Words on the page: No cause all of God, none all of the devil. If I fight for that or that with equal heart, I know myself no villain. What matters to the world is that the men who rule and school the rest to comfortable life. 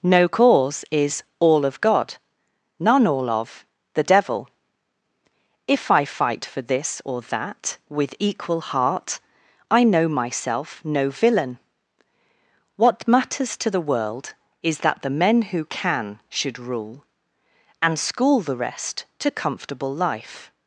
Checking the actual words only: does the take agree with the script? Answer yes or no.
no